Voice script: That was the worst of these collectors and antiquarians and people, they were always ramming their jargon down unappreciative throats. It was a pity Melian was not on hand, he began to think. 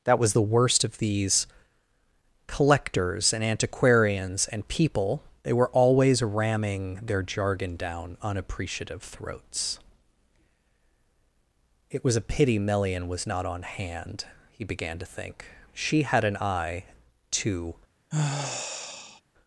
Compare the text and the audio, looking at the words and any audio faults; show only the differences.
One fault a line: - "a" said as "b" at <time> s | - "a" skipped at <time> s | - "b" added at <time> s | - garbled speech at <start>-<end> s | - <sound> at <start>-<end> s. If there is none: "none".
- "She had an eye to" added at 15.7 s
- sigh at 18.1-19.2 s